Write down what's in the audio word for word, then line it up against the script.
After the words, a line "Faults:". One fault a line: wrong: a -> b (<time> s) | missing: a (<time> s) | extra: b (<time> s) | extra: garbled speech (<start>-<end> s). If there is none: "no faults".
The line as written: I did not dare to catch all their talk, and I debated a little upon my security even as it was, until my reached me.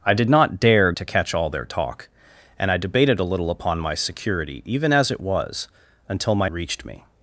I did not dare to catch all their talk, and I debated a little upon my security even as it was, until my reached me.
Faults:
no faults